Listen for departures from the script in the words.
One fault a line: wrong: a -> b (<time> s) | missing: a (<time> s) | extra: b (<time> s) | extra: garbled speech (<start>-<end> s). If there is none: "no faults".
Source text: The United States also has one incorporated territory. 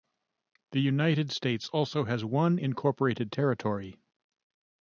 no faults